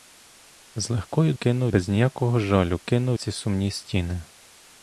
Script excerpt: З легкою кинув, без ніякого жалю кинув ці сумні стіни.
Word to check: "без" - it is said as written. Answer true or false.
true